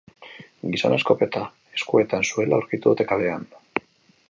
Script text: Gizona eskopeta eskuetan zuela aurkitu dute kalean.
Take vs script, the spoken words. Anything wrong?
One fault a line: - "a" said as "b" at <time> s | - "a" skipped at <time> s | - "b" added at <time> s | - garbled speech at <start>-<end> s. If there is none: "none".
none